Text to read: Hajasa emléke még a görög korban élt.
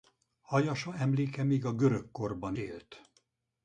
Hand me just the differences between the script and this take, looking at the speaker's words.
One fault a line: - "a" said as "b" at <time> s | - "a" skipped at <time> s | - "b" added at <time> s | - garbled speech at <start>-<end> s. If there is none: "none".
none